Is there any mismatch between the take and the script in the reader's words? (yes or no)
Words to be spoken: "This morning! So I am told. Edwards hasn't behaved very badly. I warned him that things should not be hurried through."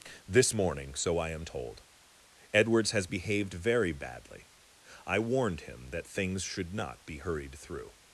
yes